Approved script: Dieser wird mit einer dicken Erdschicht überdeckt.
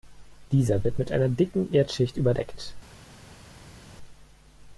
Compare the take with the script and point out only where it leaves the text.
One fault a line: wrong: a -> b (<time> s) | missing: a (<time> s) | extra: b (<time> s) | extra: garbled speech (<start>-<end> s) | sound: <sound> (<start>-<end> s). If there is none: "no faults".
no faults